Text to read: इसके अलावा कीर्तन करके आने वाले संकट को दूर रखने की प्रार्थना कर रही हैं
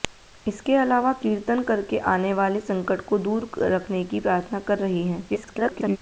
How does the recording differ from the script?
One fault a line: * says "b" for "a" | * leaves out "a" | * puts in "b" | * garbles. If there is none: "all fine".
* garbles